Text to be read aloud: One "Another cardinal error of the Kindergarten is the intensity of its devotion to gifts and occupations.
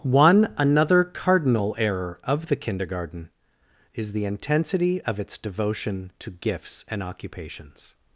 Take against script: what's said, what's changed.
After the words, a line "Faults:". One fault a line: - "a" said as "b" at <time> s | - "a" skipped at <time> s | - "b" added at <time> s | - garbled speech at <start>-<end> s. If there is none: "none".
One "Another cardinal error of the Kindergarten is the intensity of its devotion to gifts and occupations.
Faults:
none